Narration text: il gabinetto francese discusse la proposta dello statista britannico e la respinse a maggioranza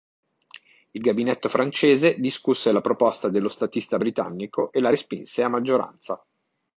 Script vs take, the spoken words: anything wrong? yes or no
no